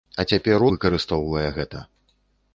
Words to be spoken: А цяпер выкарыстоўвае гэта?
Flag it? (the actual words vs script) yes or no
no